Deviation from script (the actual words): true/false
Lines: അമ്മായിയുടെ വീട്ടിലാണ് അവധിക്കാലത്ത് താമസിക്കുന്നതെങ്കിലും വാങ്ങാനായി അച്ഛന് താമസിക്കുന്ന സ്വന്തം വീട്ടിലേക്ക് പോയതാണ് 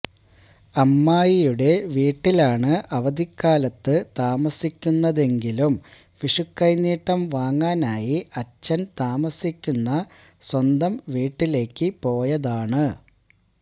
true